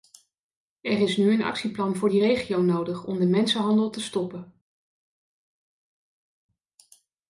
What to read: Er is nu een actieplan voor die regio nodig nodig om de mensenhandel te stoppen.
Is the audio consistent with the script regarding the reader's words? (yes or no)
no